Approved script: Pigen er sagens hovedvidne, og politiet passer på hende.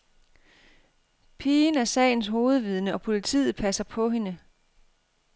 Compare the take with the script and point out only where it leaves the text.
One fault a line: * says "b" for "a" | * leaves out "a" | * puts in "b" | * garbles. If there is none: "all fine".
all fine